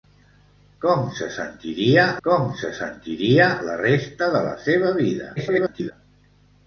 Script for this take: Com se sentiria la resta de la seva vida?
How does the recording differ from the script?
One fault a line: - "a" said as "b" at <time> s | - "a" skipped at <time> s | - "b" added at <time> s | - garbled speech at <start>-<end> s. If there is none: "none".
- "com se sentiria" added at 2.3 s
- garbled speech at 5.4-5.9 s